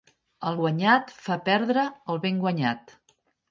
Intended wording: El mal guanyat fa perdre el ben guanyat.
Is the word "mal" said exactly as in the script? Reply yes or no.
no